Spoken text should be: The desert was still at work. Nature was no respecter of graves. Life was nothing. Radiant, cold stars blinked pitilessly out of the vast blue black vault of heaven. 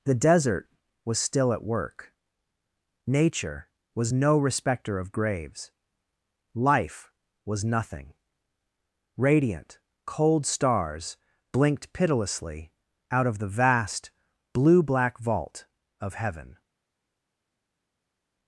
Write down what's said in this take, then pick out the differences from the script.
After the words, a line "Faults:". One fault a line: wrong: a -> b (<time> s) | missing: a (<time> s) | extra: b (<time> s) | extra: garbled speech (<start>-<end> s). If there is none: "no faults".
The desert was still at work. Nature was no respecter of graves. Life was nothing. Radiant, cold stars blinked pitilessly out of the vast blue black vault of heaven.
Faults:
no faults